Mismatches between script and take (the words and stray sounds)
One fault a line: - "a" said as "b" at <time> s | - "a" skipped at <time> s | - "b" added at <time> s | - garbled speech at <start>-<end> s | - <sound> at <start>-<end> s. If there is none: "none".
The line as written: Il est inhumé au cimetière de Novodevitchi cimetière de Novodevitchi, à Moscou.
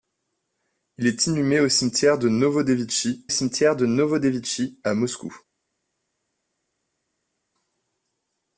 none